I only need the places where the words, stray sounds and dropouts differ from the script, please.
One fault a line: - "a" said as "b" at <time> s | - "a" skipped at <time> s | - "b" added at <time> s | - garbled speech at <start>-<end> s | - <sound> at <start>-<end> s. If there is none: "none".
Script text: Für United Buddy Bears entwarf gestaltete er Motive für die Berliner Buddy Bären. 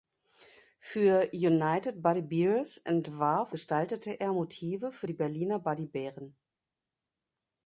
none